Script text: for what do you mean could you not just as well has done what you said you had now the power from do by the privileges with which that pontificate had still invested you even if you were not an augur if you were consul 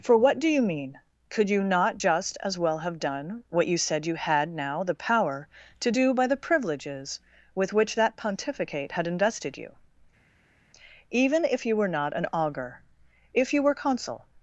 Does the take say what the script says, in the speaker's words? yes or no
no